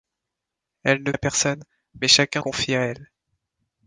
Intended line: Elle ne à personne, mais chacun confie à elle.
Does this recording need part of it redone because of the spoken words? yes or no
no